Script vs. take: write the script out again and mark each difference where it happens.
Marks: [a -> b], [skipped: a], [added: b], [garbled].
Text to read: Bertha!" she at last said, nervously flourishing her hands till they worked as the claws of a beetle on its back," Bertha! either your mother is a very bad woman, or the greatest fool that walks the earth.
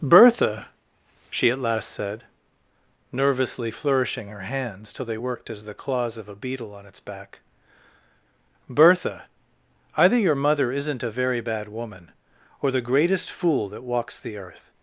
Bertha!" she at last said, nervously flourishing her hands till they worked as the claws of a beetle on its back," Bertha! either your mother [is -> isn't] a very bad woman, or the greatest fool that walks the earth.